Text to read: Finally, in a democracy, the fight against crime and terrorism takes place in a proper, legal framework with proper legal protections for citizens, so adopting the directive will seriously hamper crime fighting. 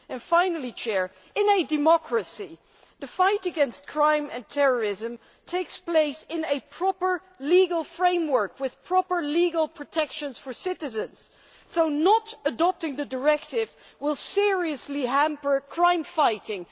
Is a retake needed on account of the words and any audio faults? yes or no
yes